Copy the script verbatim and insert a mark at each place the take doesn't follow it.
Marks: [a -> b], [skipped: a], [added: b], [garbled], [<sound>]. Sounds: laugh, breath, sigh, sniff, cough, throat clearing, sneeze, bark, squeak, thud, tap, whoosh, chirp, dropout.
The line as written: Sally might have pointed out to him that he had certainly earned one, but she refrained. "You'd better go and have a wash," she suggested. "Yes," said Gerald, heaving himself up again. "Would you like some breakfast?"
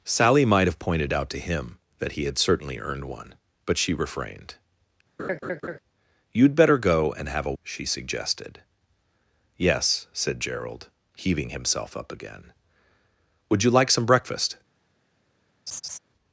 Sally might have pointed out to him that he had certainly earned one, but she refrained. [laugh] "You'd better go and have a [skipped: wash,"] she suggested. "Yes," said Gerald, heaving himself up again. "Would you like some breakfast?" [laugh]